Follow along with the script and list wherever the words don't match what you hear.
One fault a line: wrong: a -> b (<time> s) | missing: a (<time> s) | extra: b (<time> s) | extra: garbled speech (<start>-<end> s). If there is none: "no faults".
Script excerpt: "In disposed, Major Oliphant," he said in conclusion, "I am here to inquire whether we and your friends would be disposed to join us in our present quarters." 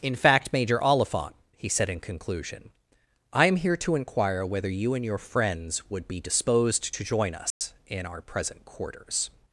wrong: disposed -> fact (0.1 s)
wrong: we -> you (4.7 s)